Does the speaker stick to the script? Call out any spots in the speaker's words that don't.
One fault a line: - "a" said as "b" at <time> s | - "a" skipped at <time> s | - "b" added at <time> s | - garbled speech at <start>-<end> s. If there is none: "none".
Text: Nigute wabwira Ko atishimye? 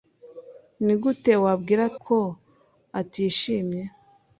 none